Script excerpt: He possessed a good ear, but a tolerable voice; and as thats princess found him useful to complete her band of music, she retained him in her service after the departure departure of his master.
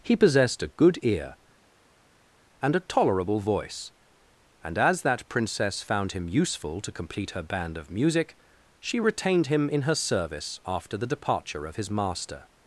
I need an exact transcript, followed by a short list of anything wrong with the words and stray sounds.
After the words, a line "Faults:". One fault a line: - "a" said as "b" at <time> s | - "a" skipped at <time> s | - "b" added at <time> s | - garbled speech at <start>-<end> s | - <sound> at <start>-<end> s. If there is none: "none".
He possessed a good ear, and a tolerable voice; and as that princess found him useful to complete her band of music, she retained him in her service after the departure of his master.
Faults:
- "but" said as "and" at 2.6 s
- "thats" said as "that" at 5.0 s
- "departure" skipped at 11.6 s